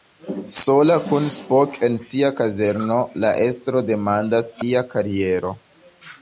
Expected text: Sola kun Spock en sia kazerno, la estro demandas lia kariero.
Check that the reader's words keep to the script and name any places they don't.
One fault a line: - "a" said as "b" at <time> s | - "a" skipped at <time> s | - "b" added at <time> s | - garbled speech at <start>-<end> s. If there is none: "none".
none